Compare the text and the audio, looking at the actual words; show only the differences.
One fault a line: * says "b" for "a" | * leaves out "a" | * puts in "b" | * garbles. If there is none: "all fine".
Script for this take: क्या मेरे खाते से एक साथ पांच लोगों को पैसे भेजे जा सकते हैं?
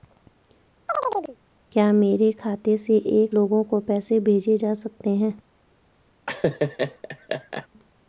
* leaves out "साथ पांच"